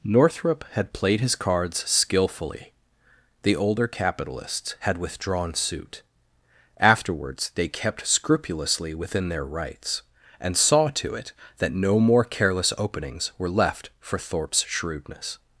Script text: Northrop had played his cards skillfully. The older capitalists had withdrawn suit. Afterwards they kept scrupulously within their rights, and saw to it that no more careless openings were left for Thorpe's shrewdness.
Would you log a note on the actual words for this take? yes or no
no